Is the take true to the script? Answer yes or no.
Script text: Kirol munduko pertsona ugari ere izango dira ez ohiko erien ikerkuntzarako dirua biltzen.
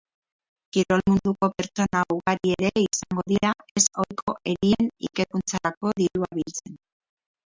yes